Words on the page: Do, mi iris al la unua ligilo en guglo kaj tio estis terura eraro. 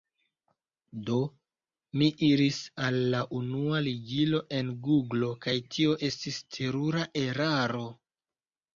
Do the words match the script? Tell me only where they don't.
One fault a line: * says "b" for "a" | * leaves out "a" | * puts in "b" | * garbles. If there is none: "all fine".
all fine